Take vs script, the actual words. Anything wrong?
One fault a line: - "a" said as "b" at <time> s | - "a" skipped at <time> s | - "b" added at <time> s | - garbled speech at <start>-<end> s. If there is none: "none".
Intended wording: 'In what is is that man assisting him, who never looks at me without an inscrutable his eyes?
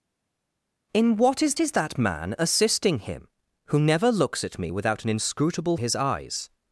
none